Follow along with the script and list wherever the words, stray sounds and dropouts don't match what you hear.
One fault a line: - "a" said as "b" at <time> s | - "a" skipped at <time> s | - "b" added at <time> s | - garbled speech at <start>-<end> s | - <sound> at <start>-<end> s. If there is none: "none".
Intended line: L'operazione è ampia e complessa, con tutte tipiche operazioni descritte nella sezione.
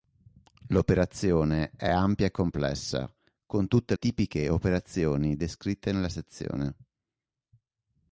none